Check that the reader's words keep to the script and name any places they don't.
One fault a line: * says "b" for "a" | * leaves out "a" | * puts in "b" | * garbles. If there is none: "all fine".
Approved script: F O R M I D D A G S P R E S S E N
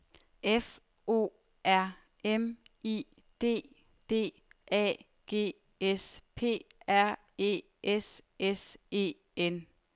all fine